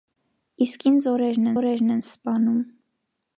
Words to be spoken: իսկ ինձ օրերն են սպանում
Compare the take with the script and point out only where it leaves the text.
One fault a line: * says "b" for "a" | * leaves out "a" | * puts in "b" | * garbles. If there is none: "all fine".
* puts in "օրերն"